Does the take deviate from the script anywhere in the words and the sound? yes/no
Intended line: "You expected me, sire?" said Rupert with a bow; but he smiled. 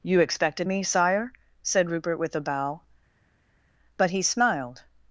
no